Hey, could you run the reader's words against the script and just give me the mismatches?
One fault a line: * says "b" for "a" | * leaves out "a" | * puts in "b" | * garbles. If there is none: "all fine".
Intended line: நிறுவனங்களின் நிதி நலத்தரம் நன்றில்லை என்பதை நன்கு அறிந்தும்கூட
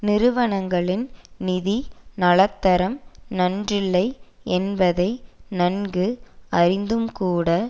all fine